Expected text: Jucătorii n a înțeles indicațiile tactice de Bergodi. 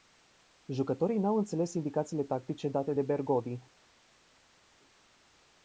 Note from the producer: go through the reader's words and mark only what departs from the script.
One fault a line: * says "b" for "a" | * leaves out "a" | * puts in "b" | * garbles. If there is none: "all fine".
* says "au" for "a"
* puts in "date"